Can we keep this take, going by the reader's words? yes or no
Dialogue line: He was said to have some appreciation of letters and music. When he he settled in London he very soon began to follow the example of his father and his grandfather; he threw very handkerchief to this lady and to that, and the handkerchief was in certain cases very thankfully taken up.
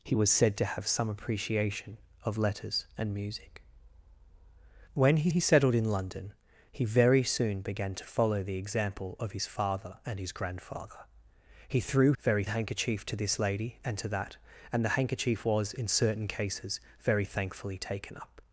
yes